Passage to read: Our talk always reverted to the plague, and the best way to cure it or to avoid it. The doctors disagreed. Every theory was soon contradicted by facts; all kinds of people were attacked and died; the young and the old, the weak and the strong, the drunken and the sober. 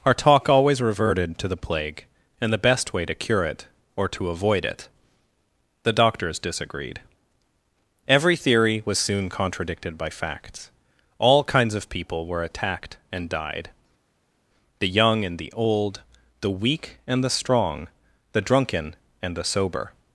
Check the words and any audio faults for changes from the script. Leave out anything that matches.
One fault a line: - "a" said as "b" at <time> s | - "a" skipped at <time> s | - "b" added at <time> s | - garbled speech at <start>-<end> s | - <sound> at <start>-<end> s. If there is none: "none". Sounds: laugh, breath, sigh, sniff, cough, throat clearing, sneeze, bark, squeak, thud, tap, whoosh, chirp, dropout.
none